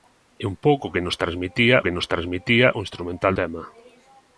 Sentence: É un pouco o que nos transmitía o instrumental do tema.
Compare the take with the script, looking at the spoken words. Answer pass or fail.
fail